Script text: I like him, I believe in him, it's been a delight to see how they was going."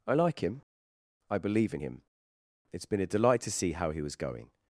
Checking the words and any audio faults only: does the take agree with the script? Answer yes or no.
no